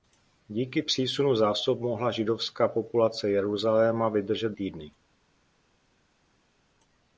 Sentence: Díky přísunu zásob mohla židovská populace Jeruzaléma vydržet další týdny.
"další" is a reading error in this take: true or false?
true